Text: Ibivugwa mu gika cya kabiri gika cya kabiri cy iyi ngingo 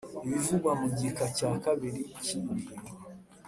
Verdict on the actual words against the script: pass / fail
fail